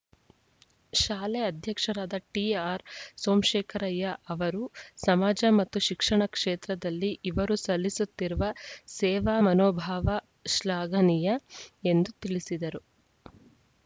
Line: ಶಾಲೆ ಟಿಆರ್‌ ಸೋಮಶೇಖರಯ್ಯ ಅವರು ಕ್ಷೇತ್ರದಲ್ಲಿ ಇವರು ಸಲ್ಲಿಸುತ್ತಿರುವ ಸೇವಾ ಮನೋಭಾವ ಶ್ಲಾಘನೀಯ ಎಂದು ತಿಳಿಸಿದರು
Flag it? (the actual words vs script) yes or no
yes